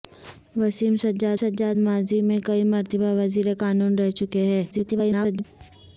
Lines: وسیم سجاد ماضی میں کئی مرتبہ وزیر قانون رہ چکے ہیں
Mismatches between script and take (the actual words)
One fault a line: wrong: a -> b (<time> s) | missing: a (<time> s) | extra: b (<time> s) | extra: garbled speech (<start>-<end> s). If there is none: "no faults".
extra: سجاد (1.3 s)
extra: garbled speech (4.7-5.5 s)